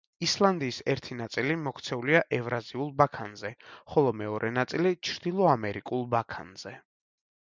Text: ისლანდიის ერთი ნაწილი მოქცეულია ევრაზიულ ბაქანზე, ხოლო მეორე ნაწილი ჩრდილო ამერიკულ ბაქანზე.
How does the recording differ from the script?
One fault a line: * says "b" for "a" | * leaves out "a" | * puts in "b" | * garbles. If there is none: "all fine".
all fine